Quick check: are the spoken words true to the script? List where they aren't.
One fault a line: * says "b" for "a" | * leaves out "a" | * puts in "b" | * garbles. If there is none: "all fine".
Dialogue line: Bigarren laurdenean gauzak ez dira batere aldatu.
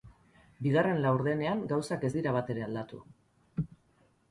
all fine